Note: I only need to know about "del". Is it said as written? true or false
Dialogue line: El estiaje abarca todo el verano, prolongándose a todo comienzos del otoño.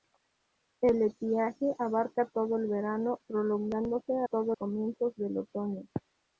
true